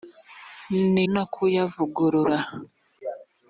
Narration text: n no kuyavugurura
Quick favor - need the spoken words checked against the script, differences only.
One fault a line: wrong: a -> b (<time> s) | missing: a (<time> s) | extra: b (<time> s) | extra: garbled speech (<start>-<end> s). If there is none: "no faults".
no faults